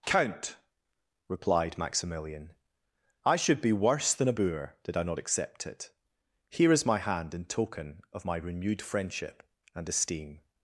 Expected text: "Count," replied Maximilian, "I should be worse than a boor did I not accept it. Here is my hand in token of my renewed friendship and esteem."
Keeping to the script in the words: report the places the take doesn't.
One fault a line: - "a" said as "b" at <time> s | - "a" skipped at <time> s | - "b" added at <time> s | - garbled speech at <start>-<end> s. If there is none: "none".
none